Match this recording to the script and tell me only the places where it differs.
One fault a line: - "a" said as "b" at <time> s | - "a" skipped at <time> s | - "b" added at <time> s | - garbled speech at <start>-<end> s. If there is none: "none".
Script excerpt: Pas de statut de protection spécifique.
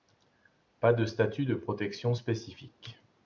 none